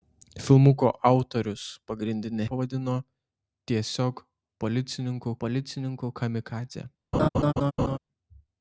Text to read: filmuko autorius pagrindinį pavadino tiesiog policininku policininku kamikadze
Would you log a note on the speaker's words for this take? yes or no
no